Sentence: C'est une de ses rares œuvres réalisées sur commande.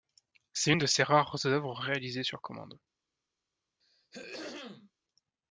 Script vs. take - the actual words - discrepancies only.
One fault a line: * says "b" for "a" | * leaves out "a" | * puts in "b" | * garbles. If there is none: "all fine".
all fine